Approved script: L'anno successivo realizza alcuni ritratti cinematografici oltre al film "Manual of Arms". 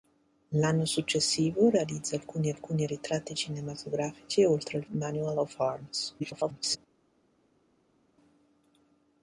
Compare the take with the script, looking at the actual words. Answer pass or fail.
fail